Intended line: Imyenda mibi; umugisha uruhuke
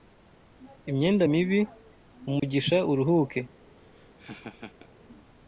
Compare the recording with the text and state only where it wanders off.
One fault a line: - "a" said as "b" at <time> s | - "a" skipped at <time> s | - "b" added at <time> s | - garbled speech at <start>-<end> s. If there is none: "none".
none